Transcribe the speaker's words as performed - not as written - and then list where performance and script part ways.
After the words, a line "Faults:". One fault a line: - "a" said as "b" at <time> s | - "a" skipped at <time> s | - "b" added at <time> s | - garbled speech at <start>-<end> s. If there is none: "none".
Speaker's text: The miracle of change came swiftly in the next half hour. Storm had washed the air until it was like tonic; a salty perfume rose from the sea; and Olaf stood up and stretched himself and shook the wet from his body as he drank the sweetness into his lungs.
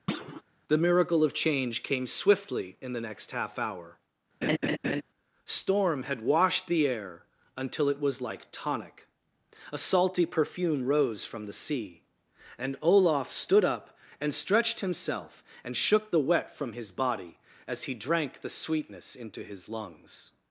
The miracle of change came swiftly in the next half hour. Storm had washed the air until it was like tonic; a salty perfume rose from the sea; and Olaf stood up and stretched himself and shook the wet from his body as he drank the sweetness into his lungs.
Faults:
none